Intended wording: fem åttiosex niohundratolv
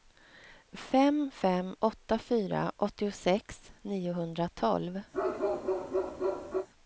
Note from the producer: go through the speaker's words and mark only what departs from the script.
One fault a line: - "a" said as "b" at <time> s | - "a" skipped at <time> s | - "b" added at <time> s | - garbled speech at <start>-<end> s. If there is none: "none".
- "fem åtta fyra" added at 1.3 s